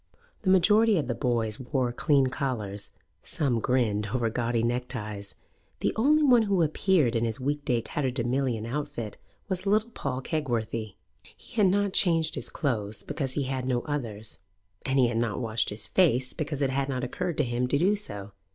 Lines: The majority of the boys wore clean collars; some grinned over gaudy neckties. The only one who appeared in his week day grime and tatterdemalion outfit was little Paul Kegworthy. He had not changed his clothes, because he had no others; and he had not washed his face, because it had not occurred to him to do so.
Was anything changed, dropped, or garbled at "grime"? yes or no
yes